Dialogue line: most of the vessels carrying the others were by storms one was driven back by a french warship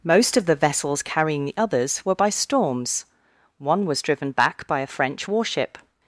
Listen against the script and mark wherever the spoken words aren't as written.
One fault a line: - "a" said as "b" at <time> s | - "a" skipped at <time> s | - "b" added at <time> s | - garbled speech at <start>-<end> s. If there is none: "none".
none